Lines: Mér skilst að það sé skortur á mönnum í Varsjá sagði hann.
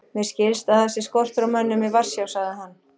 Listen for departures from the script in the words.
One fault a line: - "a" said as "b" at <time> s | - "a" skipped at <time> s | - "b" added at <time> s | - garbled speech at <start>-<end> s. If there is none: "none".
none